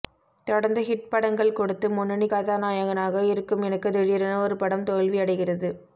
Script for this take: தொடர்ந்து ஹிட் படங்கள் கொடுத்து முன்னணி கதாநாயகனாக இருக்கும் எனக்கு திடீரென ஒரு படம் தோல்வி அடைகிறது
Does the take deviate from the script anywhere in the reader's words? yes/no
no